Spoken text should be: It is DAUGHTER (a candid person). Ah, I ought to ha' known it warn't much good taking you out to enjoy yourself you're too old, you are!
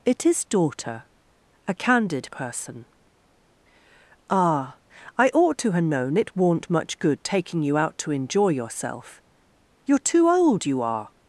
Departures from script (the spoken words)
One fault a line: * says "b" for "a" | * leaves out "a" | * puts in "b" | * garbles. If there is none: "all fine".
all fine